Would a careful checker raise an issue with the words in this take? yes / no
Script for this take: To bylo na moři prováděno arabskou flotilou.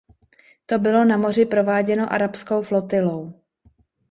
no